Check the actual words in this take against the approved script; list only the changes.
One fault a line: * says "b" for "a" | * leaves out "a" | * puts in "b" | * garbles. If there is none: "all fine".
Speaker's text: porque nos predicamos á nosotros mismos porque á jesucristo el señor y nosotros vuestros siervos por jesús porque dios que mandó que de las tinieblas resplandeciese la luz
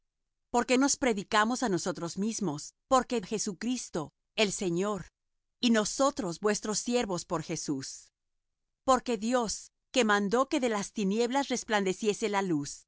all fine